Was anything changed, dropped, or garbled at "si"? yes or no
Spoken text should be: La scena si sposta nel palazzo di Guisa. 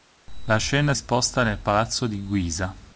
yes